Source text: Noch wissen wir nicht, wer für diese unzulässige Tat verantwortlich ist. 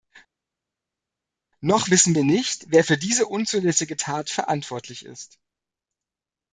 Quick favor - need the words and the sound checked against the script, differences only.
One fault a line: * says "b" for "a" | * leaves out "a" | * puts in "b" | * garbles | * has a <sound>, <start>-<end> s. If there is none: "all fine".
all fine